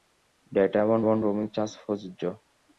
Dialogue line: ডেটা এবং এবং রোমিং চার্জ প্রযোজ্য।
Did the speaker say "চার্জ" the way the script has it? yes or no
yes